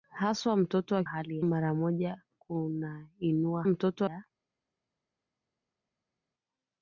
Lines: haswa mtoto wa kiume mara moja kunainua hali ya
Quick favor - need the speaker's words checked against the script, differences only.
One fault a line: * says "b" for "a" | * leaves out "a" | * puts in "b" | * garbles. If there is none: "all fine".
* says "hali" for "kiume"
* says "mtoto" for "hali"